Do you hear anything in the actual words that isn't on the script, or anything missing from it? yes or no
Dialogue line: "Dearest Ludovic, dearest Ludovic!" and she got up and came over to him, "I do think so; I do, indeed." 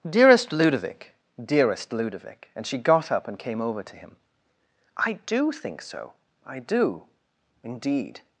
no